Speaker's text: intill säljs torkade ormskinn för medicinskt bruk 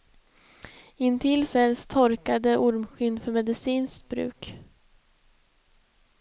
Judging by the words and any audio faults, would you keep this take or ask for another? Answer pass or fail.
pass